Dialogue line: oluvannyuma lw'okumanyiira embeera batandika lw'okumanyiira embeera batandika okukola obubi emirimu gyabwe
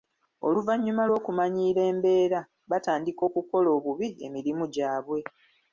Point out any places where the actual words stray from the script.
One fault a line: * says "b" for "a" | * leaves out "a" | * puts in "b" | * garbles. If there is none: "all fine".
* leaves out "lw'okumanyiira embeera batandika"